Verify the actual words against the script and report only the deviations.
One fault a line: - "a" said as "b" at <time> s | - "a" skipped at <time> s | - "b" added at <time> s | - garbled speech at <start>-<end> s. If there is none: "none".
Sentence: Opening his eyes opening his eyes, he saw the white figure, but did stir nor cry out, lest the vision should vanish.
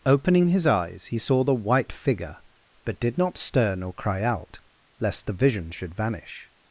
- "opening his eyes" skipped at 1.1 s
- "not" added at 3.2 s